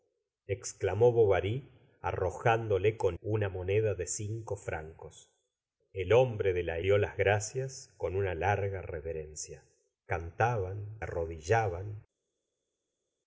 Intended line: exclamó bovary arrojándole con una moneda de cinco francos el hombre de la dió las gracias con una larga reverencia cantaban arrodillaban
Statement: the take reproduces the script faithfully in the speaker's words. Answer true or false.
true